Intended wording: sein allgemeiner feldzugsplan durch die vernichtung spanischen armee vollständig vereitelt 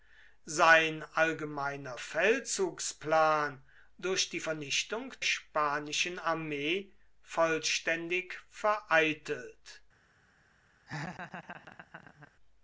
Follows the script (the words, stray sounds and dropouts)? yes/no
no